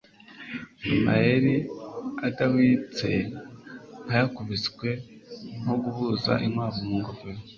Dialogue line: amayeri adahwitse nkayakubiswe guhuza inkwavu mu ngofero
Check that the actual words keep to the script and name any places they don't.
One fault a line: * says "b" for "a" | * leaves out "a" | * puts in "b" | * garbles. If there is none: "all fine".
* puts in "nko"